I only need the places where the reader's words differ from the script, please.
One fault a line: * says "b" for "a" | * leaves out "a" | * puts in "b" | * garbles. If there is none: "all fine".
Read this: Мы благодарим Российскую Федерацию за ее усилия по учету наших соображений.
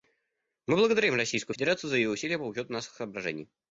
all fine